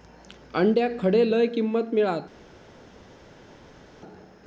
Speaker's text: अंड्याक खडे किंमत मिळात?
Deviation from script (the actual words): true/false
true